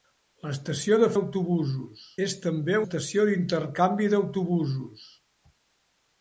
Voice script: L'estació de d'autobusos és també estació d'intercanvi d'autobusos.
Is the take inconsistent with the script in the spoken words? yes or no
no